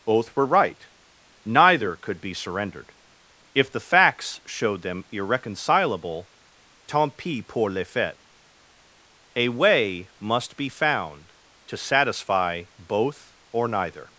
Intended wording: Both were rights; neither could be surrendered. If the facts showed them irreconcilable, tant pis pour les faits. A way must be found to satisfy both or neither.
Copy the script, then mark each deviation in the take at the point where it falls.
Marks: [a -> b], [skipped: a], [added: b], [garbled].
Both were [rights; -> right] neither could be surrendered. If the facts showed them irreconcilable, tant pis pour les faits. A way must be found to satisfy both or neither.